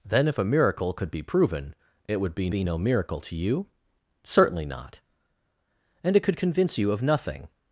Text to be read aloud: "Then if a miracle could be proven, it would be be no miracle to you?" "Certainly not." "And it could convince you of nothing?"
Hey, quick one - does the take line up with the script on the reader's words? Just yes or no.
yes